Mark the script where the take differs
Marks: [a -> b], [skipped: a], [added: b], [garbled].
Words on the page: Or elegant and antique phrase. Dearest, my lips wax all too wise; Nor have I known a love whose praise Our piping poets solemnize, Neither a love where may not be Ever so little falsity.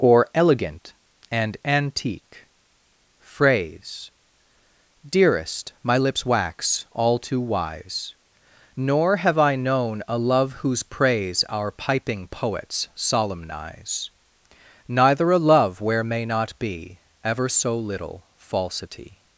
Or elegant and antique phrase. Dearest, my lips wax all too wise; Nor have I known a love whose praise Our piping poets solemnize, Neither a love where may not be Ever so little falsity.